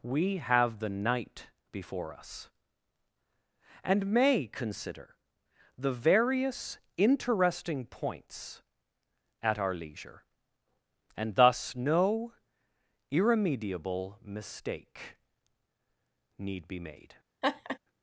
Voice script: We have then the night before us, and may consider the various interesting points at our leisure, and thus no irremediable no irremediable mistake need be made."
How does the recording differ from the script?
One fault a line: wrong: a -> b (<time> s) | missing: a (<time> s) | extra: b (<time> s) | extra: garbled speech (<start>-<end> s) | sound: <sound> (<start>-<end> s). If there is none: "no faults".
missing: then (0.8 s)
missing: no irremediable (14.2 s)
sound: laugh (17.4-17.8 s)